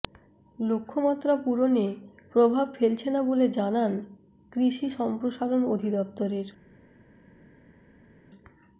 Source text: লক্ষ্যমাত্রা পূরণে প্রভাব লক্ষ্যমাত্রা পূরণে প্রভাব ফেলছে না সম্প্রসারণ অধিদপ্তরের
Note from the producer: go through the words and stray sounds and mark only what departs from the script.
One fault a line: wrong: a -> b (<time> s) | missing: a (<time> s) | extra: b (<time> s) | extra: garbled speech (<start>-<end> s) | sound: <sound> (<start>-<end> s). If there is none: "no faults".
wrong: লক্ষ্যমাত্রা পূরণে প্রভাব ফেলছে না -> ফেলছে না বলে জানান কৃষি (2.8 s)